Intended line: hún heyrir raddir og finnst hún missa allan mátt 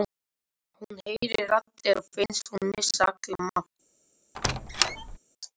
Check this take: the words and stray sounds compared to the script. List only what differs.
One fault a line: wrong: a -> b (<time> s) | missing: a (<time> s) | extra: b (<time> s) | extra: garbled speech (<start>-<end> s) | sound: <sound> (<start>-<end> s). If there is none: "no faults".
sound: squeak (4.3-5.2 s)